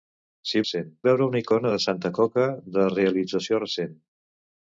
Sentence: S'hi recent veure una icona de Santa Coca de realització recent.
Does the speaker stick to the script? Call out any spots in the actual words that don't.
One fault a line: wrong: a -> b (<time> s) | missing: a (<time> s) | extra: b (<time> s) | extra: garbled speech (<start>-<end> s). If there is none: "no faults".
no faults